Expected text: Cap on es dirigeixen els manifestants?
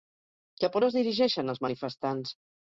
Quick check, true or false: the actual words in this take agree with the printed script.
true